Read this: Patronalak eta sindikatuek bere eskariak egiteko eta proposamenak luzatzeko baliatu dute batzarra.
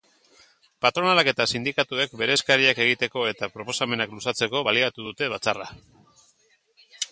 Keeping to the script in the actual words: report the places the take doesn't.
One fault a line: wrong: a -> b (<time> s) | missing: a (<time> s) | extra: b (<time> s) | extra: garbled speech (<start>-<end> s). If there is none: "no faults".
no faults